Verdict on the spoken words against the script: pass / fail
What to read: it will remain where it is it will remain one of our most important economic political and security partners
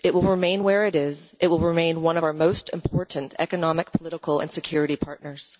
pass